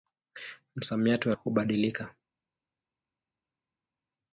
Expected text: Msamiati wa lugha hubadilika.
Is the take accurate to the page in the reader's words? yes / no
no